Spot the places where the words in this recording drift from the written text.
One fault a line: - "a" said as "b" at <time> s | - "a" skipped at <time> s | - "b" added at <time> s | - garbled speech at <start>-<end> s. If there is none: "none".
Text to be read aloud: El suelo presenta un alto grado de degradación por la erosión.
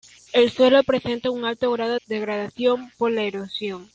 - "de" skipped at 2.0 s